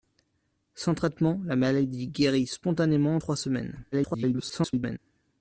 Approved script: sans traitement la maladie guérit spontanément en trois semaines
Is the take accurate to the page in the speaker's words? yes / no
no